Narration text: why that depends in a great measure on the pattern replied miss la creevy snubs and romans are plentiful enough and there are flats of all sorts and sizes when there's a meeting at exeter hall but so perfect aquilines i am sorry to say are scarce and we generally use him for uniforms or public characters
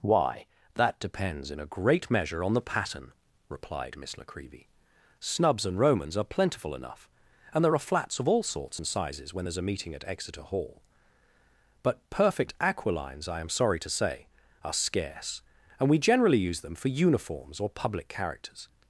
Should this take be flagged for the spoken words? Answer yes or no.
yes